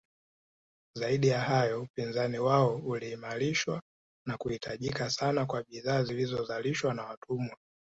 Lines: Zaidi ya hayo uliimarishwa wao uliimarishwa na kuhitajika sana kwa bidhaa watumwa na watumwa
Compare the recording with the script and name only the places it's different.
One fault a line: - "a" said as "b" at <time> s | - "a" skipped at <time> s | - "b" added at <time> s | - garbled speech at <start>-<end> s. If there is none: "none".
- "uliimarishwa" said as "upinzani" at 1.8 s
- "watumwa" said as "zilizozalishwa" at 6.0 s